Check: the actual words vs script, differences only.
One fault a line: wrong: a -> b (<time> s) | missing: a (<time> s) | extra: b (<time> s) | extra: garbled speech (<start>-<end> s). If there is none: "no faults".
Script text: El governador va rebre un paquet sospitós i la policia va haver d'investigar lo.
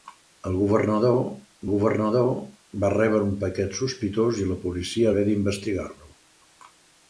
extra: governador (1.7 s)
missing: va (5.1 s)